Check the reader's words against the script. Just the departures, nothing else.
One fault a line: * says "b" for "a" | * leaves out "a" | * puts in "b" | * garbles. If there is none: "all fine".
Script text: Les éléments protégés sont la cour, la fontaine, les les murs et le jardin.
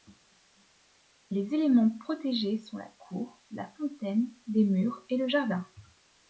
* leaves out "les"